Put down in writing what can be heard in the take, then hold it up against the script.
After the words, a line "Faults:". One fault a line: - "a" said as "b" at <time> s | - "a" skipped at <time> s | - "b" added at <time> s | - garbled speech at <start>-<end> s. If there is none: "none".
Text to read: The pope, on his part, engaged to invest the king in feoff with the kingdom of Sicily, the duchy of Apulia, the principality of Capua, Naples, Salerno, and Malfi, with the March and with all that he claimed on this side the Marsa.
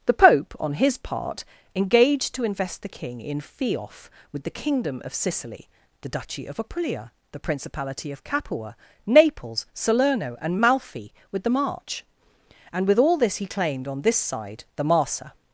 The pope, on his part, engaged to invest the king in feoff with the kingdom of Sicily, the duchy of Apulia, the principality of Capua, Naples, Salerno, and Malfi, with the March and with all this he claimed on this side the Marsa.
Faults:
- "that" said as "this" at 13.2 s